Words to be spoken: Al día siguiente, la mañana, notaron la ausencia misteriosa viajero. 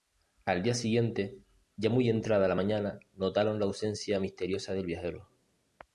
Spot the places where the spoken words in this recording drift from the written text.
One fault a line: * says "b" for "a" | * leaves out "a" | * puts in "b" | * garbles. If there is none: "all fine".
* puts in "ya muy entrada"
* puts in "del"